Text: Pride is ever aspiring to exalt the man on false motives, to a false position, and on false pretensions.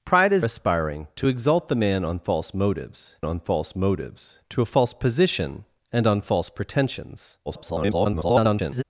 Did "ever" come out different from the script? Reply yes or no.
yes